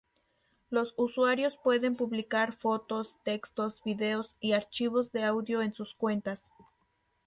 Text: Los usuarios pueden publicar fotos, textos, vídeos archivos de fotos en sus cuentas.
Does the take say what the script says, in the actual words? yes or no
no